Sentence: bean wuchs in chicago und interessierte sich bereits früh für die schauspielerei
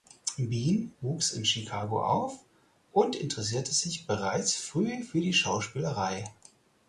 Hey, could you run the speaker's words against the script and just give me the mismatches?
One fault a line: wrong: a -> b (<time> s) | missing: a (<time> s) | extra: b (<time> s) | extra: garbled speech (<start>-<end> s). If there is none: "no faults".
extra: auf (2.0 s)